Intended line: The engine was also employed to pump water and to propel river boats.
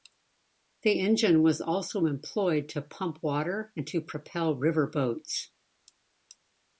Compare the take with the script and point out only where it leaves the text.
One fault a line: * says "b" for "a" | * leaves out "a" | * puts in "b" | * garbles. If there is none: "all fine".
all fine